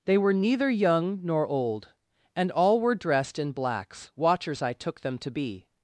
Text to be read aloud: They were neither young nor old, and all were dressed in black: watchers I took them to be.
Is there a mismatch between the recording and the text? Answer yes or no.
yes